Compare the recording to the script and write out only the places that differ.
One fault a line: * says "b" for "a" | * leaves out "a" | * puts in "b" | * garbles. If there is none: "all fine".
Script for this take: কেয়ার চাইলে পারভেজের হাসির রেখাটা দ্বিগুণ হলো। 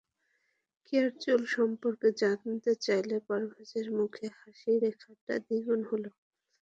* puts in "চুল সম্পর্কে জানতে"
* puts in "মুখে"